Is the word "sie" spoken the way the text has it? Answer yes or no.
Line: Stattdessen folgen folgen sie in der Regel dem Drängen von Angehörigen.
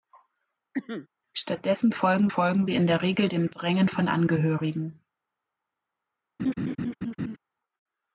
yes